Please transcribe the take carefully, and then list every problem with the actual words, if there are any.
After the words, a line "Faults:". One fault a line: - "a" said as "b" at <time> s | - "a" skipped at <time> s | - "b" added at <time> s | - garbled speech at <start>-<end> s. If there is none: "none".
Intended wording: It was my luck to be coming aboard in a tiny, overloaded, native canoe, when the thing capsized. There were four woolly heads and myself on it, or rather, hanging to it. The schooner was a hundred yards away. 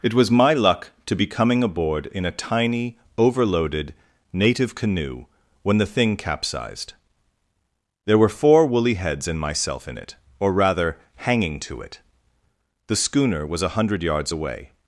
It was my luck to be coming aboard in a tiny, overloaded, native canoe, when the thing capsized. There were four woolly heads and myself in it, or rather, hanging to it. The schooner was a hundred yards away.
Faults:
- "on" said as "in" at 9.9 s